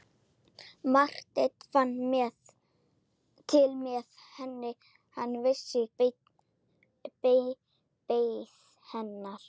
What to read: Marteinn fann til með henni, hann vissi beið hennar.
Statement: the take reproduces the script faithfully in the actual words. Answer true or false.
true